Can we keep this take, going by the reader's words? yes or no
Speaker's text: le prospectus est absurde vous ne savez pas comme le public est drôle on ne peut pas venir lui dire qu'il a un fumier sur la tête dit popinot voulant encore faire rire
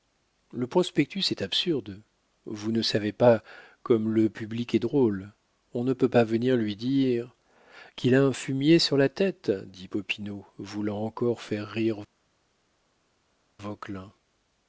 yes